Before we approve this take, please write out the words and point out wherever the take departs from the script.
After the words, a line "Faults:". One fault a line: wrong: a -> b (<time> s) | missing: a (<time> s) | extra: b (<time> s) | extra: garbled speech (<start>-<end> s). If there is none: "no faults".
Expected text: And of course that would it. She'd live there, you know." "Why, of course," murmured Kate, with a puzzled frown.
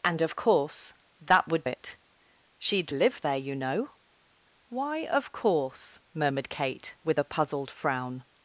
And of course that would it. She'd live there, you know." "Why, of course," murmured Kate, with a puzzled frown.
Faults:
no faults